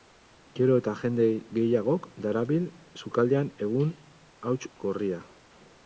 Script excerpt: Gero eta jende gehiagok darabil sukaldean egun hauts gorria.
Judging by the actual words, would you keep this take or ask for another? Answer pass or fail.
pass